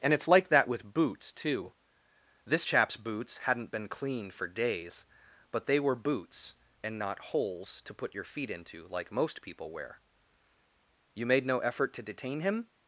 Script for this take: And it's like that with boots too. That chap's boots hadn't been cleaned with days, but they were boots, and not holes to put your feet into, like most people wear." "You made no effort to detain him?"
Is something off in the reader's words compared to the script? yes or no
yes